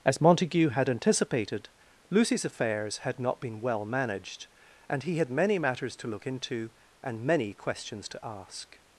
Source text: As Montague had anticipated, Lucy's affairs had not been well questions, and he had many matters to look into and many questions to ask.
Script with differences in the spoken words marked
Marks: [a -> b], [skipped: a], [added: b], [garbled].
As Montague had anticipated, Lucy's affairs had not been well [questions, -> managed] and he had many matters to look into and many questions to ask.